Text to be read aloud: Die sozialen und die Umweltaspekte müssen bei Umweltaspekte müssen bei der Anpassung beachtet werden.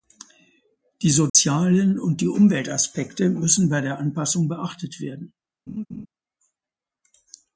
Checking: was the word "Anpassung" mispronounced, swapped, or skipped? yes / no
no